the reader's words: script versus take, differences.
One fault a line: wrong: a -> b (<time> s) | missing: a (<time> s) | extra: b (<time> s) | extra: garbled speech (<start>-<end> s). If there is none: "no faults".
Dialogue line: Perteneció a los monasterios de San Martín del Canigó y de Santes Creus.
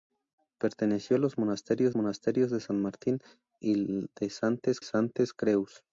extra: monasterios (1.9 s)
missing: del Canigó (3.2 s)
extra: Santes (4.8 s)